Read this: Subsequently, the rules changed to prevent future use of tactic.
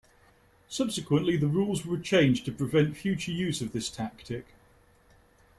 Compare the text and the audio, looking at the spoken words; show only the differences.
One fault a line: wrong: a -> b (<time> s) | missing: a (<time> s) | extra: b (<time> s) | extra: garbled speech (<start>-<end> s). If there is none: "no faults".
extra: were (1.9 s)
extra: this (3.7 s)